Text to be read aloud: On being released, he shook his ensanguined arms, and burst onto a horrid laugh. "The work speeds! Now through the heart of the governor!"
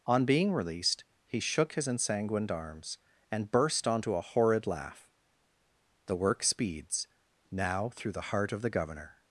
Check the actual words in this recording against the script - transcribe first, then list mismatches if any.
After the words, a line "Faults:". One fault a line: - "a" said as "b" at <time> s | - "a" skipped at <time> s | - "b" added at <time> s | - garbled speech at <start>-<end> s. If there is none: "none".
On being released, he shook his ensanguined arms, and burst onto a horrid laugh. "The work speeds! Now through the heart of the governor!"
Faults:
none